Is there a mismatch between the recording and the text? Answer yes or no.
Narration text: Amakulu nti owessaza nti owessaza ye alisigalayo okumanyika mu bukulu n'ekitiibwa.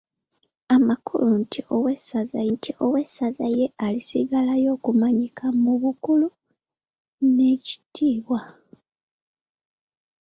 no